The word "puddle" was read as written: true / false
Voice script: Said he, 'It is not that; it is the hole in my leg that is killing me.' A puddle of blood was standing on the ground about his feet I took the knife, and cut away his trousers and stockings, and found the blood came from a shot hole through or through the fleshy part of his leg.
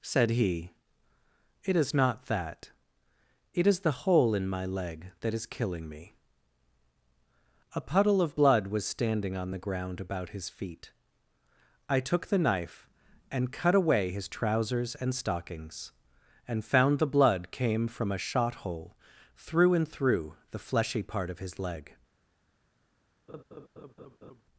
true